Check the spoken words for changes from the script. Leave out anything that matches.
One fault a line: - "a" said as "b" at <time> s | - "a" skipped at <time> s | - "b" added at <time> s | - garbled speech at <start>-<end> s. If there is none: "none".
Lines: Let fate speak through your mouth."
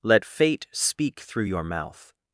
none